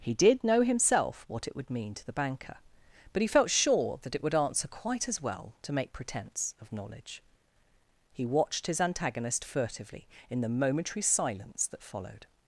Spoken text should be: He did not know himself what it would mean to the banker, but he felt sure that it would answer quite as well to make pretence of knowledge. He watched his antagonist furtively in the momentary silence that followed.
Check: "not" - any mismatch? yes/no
yes